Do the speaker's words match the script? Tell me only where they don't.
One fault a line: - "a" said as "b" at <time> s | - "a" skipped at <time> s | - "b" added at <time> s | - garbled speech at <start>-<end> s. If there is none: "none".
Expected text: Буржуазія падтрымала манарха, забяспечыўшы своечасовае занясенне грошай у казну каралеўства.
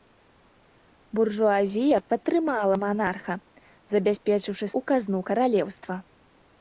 - "своечасовае занясенне грошай" skipped at 4.7 s